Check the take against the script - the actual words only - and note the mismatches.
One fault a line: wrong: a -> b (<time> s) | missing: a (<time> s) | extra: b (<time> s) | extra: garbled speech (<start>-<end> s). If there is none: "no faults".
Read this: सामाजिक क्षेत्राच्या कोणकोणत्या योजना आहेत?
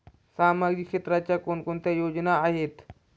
no faults